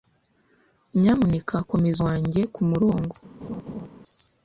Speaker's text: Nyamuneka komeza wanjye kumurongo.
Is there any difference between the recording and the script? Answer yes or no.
no